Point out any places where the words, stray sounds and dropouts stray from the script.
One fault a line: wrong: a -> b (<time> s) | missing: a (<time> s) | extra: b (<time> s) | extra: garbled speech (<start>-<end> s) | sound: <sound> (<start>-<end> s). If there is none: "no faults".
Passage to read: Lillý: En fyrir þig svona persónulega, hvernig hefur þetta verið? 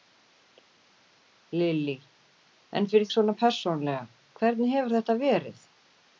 missing: þig (3.1 s)